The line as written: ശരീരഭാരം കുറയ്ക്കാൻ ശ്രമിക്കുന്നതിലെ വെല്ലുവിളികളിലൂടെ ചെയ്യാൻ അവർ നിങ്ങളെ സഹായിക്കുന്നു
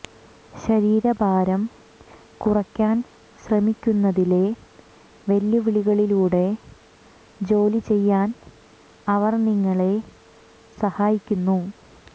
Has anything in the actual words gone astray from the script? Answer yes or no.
yes